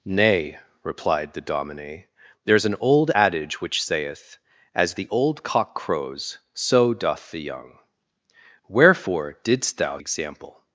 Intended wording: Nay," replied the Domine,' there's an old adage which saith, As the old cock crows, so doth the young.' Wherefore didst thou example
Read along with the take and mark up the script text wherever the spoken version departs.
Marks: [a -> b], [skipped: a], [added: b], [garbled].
Nay," replied the Domine,' there's an old adage which saith, As the old cock crows, so doth the young.' Wherefore didst thou example